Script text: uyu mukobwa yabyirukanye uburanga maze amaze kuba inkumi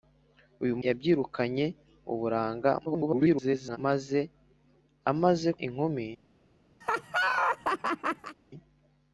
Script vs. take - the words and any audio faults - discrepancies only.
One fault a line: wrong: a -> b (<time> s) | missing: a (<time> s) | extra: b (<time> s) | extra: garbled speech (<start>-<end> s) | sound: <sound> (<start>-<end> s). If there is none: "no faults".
missing: mukobwa (0.8 s)
extra: garbled speech (2.9-3.8 s)
missing: kuba (5.5 s)
sound: laugh (6.8-8.4 s)